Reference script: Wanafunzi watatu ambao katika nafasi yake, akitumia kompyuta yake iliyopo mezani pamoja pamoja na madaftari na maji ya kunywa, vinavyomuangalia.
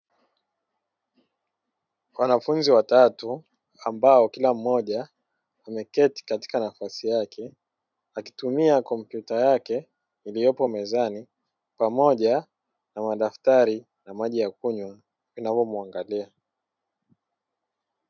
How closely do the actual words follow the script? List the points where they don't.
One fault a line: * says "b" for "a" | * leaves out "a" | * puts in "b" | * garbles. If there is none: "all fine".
* puts in "kila mmoja ameketi"
* leaves out "pamoja"